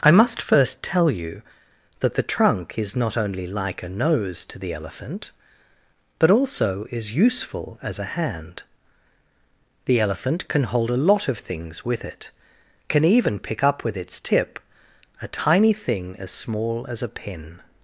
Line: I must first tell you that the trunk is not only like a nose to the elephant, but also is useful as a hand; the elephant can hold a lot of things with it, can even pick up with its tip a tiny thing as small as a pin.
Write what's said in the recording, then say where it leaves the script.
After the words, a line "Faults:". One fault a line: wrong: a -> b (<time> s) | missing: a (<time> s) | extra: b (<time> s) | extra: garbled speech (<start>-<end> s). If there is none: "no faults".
I must first tell you that the trunk is not only like a nose to the elephant, but also is useful as a hand; the elephant can hold a lot of things with it, can even pick up with its tip a tiny thing as small as a pin.
Faults:
no faults